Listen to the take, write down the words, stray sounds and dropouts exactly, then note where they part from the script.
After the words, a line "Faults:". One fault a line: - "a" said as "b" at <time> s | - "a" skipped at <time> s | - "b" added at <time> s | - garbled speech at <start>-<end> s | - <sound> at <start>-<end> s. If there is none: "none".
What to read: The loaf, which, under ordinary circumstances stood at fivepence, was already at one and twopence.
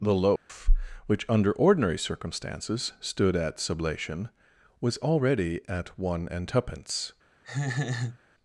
The loaf, which, under ordinary circumstances stood at sublation, was already at one and twopence.
Faults:
- dropout at 0.4-0.5 s
- "fivepence" said as "sublation" at 3.6 s
- laugh at 7.4-8.2 s